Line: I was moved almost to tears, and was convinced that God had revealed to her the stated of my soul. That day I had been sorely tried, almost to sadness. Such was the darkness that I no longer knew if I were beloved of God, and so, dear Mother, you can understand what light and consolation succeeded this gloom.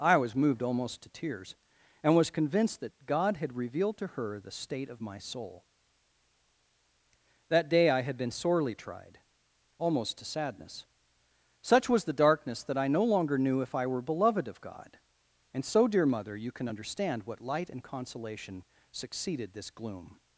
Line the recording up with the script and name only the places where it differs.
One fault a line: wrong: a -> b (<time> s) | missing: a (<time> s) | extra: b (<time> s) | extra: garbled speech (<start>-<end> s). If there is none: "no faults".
wrong: stated -> state (4.5 s)